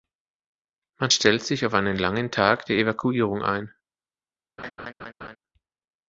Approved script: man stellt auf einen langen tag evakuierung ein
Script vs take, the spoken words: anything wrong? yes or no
yes